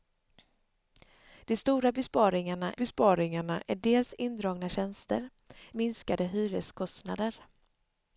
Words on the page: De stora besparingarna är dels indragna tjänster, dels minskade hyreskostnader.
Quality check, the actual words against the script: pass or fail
fail